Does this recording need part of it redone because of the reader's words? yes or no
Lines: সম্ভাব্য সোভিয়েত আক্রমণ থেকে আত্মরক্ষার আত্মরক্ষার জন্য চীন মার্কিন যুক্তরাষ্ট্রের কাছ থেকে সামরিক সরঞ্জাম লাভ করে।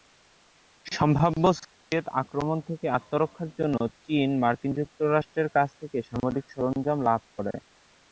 yes